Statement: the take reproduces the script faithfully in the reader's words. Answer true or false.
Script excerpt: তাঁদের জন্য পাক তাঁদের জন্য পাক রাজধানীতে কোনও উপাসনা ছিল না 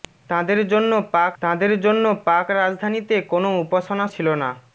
true